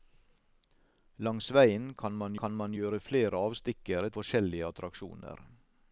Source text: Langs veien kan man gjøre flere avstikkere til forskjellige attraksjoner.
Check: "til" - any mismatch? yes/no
yes